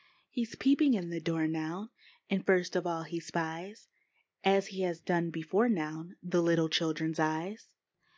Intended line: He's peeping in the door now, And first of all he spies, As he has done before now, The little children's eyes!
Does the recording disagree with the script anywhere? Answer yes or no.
no